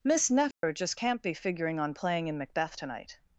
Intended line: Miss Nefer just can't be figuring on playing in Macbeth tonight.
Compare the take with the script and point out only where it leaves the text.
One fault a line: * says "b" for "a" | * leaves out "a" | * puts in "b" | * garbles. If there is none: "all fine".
all fine